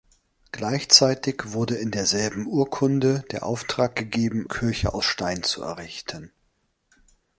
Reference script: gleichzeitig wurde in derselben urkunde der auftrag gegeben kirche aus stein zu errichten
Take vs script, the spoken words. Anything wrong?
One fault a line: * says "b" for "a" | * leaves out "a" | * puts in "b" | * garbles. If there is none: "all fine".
all fine